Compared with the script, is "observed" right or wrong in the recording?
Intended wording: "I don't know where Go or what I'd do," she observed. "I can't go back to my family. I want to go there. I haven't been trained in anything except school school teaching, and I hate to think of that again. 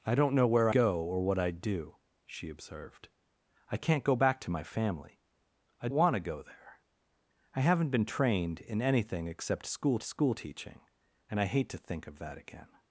right